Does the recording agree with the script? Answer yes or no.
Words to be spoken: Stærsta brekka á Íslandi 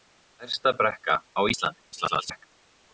no